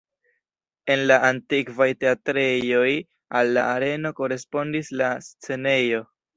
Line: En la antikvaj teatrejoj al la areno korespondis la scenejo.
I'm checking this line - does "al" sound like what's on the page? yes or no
yes